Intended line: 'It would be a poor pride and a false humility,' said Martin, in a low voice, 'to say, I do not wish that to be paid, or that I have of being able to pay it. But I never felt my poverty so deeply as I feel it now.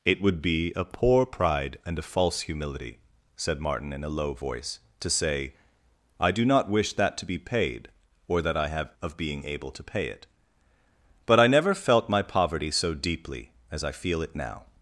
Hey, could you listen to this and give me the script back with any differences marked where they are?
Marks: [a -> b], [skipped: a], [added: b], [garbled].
'It would be a poor pride and a false humility,' said Martin, in a low voice, 'to say, I do not wish that to be paid, or that I have of being able to pay it. But I never felt my poverty so deeply as I feel it now.